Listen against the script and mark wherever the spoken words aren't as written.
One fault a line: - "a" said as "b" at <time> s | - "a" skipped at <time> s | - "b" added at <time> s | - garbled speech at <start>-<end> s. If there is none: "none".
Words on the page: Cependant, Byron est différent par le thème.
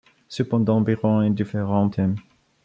- "par le" skipped at 1.9 s